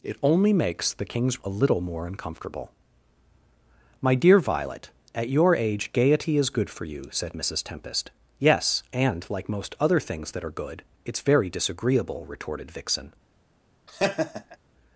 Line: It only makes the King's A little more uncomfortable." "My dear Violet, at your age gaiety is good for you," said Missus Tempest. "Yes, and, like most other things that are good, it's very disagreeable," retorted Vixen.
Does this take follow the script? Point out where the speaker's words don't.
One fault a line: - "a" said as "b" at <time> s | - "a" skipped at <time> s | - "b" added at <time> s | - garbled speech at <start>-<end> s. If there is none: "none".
none